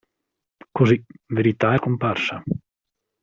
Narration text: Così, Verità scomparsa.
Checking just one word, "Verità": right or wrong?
right